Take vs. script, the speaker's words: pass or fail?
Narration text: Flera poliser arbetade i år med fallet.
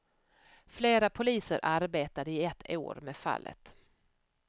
fail